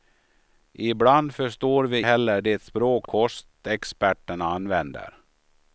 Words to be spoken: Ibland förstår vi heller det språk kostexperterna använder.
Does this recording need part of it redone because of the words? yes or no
no